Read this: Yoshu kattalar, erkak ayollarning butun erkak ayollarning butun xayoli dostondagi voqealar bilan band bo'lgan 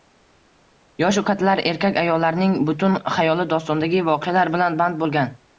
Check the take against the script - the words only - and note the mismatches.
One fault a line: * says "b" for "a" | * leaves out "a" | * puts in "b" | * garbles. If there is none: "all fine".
* leaves out "erkak ayollarning butun"